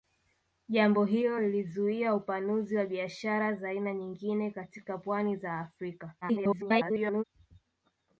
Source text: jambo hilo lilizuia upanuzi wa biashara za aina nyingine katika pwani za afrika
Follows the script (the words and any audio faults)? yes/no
no